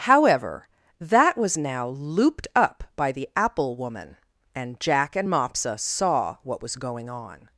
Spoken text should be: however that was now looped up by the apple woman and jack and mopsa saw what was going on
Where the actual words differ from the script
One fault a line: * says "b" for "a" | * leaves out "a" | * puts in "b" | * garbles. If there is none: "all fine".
all fine